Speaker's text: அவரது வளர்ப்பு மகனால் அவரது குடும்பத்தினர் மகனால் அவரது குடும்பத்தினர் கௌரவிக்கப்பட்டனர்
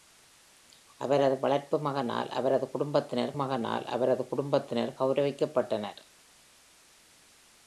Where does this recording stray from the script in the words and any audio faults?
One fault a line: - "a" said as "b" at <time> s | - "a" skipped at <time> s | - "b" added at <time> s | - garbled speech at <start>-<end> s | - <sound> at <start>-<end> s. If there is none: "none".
none